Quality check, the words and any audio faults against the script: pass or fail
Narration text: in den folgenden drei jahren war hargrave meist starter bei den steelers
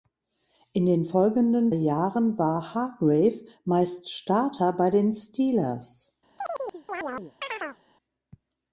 fail